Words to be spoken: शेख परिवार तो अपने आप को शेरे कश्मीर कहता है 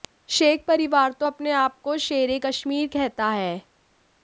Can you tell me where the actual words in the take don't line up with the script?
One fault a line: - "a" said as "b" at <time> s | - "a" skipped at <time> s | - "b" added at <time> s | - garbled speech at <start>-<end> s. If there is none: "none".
none